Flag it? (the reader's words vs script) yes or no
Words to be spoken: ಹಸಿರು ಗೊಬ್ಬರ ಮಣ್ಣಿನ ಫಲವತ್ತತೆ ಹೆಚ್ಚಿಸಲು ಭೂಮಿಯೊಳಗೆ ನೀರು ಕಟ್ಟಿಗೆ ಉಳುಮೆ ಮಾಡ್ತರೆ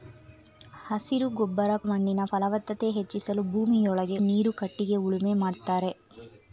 no